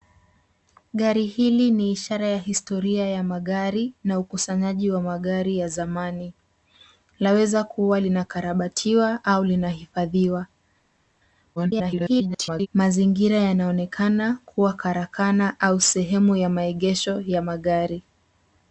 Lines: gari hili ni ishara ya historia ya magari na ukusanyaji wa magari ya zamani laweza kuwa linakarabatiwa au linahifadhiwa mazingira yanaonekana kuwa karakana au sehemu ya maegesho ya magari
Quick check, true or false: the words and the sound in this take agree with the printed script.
false